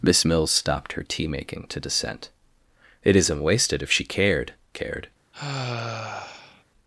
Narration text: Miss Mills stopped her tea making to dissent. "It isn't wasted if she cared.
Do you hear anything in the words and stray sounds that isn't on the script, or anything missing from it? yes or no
yes